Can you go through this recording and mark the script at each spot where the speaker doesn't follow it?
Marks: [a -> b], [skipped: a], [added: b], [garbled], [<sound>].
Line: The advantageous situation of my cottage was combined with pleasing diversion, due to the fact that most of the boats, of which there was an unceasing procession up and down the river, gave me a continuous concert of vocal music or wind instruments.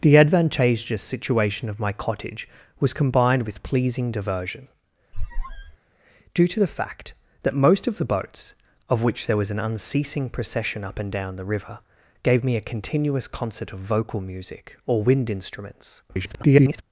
The advantageous situation of my cottage was combined with pleasing diversion, [squeak] due to the fact that most of the boats, of which there was an unceasing procession up and down the river, gave me a continuous concert of vocal music or wind instruments. [garbled]